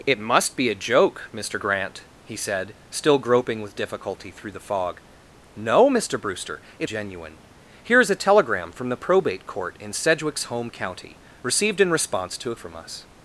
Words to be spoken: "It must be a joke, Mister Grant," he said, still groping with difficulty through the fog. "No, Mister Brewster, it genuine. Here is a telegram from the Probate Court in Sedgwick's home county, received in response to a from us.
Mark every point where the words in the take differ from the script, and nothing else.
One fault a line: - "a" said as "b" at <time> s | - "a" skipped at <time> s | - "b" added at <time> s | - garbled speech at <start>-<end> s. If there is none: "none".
none